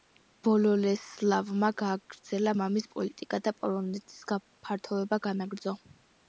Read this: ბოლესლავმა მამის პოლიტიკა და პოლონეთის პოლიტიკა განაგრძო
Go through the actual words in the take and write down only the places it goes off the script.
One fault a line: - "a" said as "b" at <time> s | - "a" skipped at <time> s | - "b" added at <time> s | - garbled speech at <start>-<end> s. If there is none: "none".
- "გააგრძელა" added at 1.8 s
- "პოლიტიკა" said as "გაფართოება" at 4.3 s